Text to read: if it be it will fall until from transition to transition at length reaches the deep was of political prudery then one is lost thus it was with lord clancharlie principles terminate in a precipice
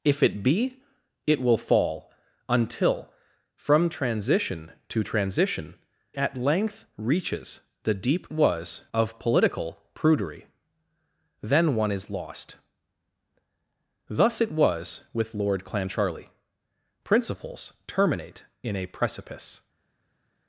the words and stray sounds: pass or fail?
pass